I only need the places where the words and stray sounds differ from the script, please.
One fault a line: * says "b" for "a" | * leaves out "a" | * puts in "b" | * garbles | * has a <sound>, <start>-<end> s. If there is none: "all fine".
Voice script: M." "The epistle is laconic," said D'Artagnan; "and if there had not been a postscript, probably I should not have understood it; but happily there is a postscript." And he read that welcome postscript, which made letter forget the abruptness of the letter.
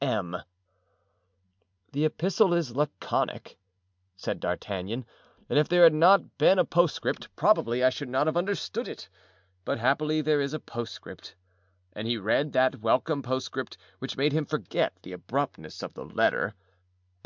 * says "him" for "letter"